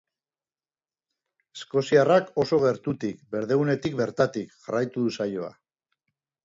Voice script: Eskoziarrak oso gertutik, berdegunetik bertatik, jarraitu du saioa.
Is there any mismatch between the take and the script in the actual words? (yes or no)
no